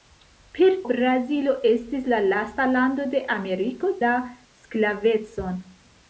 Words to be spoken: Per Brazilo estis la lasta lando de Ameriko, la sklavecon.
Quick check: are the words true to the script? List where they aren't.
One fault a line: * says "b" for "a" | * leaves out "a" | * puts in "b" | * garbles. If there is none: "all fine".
all fine